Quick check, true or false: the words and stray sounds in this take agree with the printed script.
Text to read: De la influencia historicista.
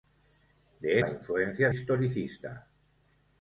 true